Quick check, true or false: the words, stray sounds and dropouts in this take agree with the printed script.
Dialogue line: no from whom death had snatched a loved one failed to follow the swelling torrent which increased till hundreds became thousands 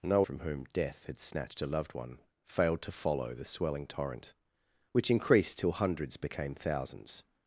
true